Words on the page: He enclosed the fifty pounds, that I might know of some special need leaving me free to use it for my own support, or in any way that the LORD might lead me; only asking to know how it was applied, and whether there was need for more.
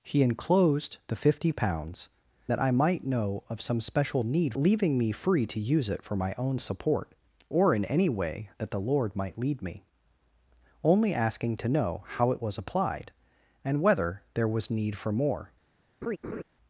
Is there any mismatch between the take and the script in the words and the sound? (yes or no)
yes